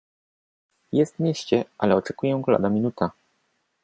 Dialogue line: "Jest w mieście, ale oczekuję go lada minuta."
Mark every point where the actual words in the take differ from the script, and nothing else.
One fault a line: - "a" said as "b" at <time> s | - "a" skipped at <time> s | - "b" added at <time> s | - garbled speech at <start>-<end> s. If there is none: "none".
none